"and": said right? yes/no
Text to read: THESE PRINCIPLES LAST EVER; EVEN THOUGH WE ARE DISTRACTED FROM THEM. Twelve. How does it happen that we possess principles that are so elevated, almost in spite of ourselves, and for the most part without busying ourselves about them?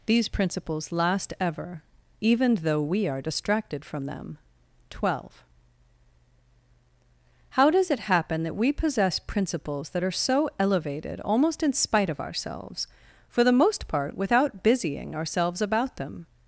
no